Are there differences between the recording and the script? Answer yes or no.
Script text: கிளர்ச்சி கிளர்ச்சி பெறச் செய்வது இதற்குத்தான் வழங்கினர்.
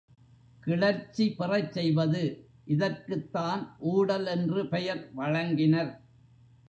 yes